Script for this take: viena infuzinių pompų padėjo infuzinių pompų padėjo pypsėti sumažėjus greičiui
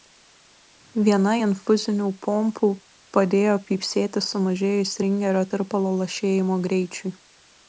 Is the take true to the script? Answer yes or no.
no